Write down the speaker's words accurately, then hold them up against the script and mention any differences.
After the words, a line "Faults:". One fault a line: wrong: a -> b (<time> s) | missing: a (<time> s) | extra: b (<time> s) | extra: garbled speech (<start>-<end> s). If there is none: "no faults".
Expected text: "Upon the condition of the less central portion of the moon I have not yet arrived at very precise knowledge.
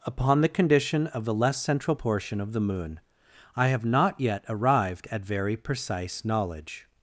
"Upon the condition of the less central portion of the moon I have not yet arrived at very precise knowledge.
Faults:
no faults